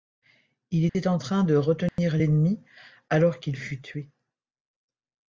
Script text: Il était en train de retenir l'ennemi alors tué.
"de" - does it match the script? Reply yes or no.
yes